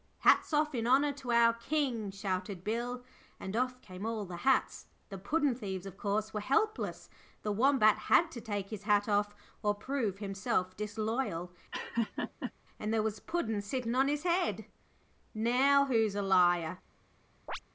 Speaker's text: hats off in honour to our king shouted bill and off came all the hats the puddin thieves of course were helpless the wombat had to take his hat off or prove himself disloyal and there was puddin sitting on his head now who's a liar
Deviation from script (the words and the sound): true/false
true